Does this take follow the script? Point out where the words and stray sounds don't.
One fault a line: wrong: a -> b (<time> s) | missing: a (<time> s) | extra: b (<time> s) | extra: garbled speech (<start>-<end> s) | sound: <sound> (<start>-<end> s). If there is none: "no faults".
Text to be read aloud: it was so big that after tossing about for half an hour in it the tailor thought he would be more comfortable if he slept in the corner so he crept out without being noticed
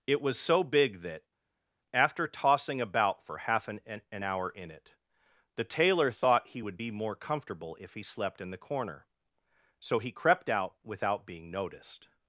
extra: an (4.1 s)